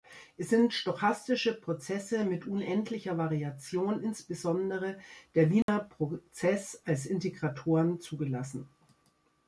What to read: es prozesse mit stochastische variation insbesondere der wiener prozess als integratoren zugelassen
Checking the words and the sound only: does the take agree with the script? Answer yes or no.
no